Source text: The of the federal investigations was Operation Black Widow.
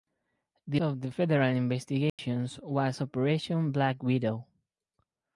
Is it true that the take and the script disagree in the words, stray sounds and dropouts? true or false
true